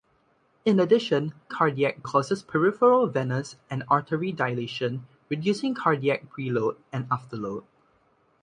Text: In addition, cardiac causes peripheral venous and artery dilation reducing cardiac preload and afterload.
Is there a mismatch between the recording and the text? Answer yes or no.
no